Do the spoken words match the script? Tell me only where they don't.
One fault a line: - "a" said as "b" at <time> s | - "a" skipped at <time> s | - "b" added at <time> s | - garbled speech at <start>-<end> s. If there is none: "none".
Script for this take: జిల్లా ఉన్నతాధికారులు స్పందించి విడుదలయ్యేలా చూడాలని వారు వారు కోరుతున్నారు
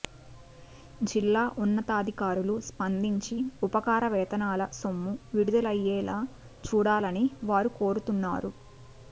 - "ఉపకార వేతనాల సొమ్ము" added at 3.6 s
- "వారు" skipped at 7.7 s